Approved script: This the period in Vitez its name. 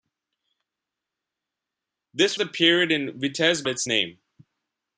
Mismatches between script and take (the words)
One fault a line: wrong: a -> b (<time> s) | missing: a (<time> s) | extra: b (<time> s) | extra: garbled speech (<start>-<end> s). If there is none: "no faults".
no faults